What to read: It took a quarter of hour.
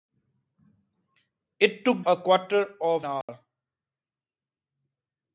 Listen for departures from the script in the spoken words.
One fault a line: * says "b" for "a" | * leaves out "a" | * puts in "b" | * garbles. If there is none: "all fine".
all fine